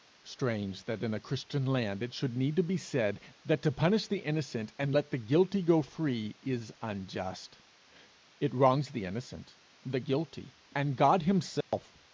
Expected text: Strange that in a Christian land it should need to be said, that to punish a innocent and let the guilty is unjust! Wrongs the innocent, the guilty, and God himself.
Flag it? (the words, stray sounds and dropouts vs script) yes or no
yes